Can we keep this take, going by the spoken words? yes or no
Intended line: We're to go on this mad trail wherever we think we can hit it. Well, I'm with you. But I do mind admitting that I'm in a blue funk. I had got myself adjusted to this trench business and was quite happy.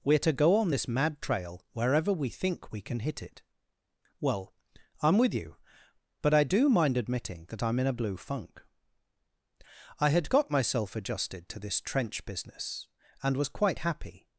yes